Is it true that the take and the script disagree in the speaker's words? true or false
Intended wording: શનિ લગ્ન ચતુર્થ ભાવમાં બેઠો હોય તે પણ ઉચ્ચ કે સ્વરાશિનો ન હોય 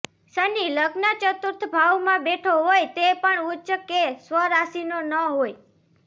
false